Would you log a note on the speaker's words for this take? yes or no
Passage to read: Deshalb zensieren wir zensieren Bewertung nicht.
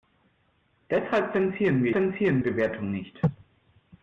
no